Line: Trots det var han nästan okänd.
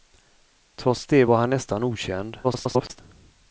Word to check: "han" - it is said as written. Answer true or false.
true